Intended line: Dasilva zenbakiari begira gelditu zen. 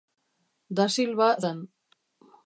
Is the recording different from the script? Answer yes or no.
yes